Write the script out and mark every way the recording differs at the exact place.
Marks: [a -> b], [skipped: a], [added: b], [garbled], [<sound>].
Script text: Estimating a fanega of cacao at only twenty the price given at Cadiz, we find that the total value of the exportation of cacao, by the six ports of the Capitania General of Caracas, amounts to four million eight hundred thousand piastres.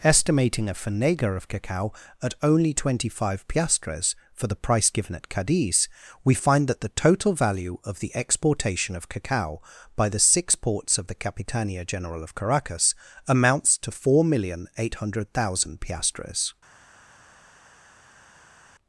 Estimating a fanega of cacao at only twenty [added: five piastres for] the price given at Cadiz, we find that the total value of the exportation of cacao, by the six ports of the Capitania General of Caracas, amounts to four million eight hundred thousand piastres.